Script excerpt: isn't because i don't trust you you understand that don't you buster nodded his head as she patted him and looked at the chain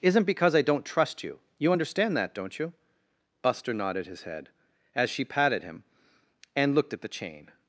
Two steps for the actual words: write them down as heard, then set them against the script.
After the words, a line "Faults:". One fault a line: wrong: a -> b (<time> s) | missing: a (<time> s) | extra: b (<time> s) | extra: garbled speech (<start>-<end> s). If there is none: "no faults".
isn't because i don't trust you you understand that don't you buster nodded his head as she patted him and looked at the chain
Faults:
no faults